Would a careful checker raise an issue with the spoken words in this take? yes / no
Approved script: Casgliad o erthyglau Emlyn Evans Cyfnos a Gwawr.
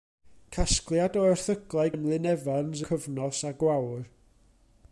no